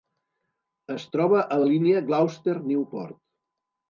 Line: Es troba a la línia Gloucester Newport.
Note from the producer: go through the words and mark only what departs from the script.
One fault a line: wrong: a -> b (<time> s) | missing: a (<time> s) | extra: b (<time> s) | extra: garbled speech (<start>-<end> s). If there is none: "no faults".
no faults